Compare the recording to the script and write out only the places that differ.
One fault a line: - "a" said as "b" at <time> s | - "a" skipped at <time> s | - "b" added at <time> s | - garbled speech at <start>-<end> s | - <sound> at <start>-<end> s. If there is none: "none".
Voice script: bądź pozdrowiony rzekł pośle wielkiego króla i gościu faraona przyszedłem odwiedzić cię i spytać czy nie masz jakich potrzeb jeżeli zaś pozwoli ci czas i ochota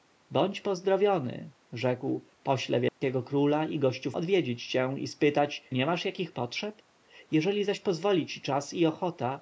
- dropout at 2.9-3.0 s
- "faraona przyszedłem" skipped at 4.1 s
- "czy" skipped at 5.6 s